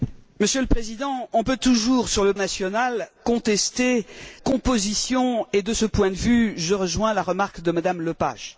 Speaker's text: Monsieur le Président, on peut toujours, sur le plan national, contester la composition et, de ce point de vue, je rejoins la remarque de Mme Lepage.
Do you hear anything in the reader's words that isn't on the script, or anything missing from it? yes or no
yes